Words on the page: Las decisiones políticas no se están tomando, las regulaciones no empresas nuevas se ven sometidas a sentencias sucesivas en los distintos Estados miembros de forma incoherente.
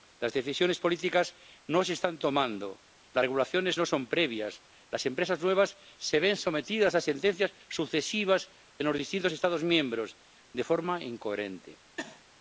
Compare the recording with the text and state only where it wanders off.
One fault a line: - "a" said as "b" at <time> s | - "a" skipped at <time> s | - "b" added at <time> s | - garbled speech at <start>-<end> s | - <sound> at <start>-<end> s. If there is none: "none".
- "son previas las" added at 3.8 s
- sneeze at 12.0-12.2 s